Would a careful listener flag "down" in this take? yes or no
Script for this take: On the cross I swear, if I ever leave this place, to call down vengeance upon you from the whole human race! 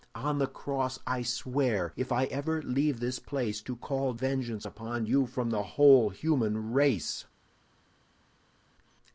yes